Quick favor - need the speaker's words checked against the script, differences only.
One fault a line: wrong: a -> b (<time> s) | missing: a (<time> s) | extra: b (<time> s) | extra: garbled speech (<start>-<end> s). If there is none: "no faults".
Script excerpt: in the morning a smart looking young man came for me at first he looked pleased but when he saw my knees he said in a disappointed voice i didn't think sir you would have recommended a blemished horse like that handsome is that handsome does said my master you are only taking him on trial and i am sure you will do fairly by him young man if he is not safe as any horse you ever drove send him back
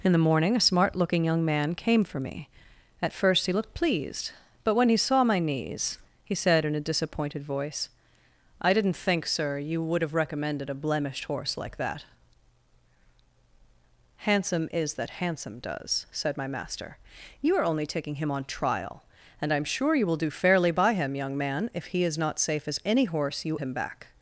missing: ever drove send (23.6 s)